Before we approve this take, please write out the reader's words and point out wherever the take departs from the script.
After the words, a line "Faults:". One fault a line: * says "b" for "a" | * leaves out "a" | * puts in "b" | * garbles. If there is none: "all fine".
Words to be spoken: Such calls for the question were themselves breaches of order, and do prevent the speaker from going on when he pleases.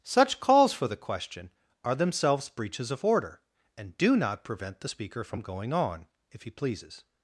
Such calls for the question are themselves breaches of order, and do not prevent the speaker from going on if he pleases.
Faults:
* says "are" for "were"
* puts in "not"
* says "if" for "when"